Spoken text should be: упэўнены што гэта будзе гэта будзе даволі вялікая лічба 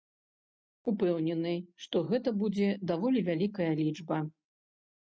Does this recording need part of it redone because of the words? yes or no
yes